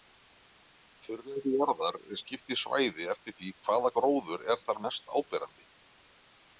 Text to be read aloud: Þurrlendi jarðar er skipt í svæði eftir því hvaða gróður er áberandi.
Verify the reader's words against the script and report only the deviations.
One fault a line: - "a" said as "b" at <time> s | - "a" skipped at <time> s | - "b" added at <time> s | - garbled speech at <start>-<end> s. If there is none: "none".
- "þar mest" added at 4.7 s